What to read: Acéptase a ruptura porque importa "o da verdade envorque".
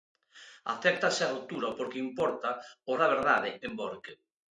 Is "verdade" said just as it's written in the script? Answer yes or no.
yes